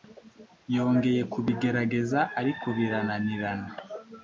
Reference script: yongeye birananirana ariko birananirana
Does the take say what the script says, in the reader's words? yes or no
no